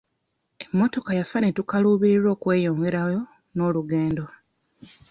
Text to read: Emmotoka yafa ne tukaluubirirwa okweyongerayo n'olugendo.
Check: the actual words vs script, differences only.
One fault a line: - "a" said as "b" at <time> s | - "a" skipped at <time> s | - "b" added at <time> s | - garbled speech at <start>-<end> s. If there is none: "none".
none